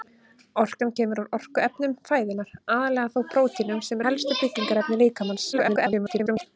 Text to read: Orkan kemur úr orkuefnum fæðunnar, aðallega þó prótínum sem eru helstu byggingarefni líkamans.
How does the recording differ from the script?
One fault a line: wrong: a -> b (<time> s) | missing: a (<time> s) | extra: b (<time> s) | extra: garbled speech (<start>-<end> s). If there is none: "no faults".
missing: eru (4.0 s)
extra: garbled speech (5.5-6.5 s)